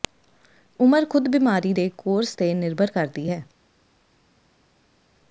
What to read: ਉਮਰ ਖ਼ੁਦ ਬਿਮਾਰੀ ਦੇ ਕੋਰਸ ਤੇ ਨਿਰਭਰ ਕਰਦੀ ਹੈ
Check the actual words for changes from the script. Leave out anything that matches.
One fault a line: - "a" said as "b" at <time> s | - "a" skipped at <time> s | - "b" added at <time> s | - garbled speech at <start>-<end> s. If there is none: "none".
none